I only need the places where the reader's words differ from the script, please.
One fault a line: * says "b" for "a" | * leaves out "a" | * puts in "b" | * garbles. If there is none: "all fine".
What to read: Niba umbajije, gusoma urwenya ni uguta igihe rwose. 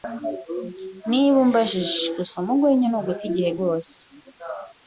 all fine